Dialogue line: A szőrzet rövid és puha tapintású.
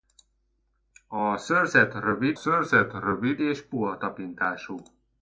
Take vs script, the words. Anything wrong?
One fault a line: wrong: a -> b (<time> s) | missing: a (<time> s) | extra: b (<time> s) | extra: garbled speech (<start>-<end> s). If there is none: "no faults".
extra: szőrzet rövid (2.3 s)